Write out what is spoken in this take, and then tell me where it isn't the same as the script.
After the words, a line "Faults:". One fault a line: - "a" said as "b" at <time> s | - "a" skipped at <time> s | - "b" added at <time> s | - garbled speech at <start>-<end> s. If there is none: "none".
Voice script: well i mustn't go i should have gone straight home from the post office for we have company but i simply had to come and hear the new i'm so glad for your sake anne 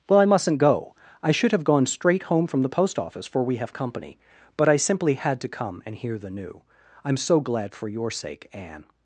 well i mustn't go i should have gone straight home from the post office for we have company but i simply had to come and hear the new i'm so glad for your sake anne
Faults:
none